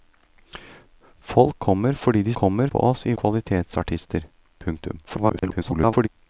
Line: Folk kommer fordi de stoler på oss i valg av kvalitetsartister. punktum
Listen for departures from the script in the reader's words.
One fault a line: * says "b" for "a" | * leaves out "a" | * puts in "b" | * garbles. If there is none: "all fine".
* says "kommer" for "stoler"
* leaves out "valg av"
* garbles